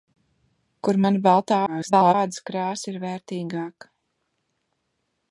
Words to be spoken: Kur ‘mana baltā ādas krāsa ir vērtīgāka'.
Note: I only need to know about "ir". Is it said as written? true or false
true